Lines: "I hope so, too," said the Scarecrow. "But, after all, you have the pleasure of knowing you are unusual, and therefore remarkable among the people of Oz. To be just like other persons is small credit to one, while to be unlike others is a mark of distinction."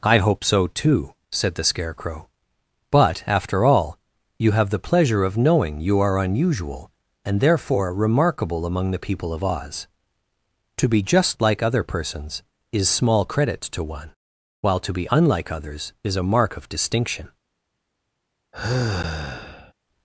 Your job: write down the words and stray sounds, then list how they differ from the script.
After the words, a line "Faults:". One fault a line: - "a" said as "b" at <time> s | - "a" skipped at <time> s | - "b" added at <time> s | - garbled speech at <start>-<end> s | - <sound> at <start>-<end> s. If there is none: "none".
"I hope so, too," said the Scarecrow. "But, after all, you have the pleasure of knowing you are unusual, and therefore remarkable among the people of Oz. To be just like other persons is small credit to one, while to be unlike others is a mark of distinction."
Faults:
- sigh at 18.5-19.7 s